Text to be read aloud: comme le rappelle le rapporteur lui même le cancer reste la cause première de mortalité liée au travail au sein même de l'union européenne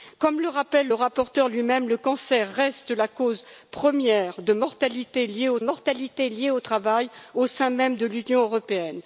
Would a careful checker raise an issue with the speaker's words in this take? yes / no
yes